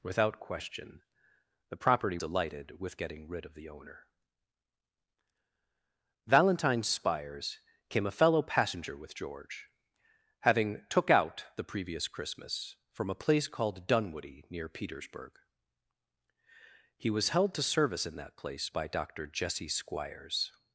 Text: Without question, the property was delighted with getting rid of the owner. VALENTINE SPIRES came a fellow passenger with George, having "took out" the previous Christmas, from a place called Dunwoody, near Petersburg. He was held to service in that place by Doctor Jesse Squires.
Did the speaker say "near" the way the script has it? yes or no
yes